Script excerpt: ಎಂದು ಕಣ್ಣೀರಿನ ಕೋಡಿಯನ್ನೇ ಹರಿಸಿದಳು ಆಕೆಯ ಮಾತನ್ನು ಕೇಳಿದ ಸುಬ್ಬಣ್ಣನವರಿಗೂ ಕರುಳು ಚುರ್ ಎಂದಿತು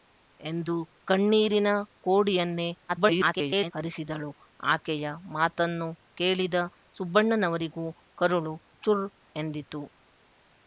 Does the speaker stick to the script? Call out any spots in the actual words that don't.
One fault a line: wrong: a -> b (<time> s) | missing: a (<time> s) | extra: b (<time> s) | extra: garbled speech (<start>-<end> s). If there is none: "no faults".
extra: garbled speech (2.9-3.7 s)